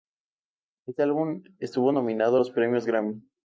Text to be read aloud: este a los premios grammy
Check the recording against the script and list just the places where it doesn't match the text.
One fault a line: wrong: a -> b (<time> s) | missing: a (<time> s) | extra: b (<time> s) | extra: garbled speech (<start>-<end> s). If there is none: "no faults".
extra: álbum estuvo nominado (1.0 s)